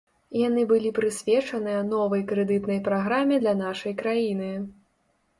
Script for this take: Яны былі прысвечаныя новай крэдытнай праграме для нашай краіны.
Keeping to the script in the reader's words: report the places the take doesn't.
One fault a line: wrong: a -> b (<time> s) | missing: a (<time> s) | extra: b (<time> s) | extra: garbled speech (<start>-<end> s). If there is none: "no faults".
no faults